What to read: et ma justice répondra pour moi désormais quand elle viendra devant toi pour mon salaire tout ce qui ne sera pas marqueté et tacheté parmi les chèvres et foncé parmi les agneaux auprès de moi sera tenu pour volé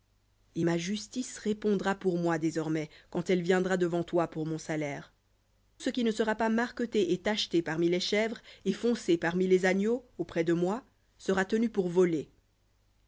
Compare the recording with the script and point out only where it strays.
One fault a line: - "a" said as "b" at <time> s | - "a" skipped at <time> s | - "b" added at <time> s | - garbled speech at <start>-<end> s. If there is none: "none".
- "tout" skipped at 5.1 s